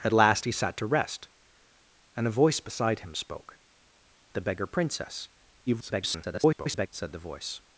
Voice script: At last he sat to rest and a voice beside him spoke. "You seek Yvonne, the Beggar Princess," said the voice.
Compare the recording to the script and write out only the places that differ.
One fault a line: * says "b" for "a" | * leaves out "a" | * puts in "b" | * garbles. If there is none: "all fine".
* leaves out "You seek Yvonne"
* garbles